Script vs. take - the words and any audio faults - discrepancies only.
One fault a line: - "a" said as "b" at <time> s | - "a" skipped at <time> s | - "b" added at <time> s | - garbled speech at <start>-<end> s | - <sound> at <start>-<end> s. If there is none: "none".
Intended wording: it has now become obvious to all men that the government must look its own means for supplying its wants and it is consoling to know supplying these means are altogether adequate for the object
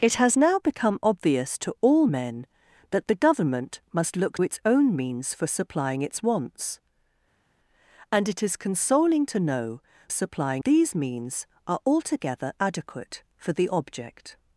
none